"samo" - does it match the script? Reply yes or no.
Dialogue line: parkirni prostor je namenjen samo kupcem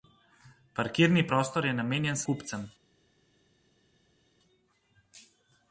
no